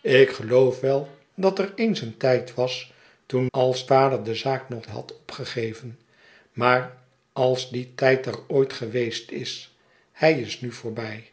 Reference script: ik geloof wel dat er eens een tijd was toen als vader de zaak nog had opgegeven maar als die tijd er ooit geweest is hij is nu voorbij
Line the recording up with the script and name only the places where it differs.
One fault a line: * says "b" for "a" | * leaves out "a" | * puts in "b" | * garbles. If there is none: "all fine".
all fine